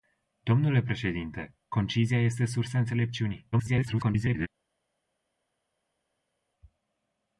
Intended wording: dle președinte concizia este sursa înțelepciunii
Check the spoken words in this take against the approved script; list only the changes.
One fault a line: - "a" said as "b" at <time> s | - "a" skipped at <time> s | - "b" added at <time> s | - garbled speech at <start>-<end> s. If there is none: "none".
- garbled speech at 3.5-4.5 s